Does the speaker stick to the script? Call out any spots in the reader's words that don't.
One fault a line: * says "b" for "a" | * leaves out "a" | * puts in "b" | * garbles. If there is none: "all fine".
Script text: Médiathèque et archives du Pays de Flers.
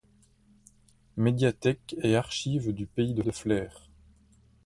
* puts in "de"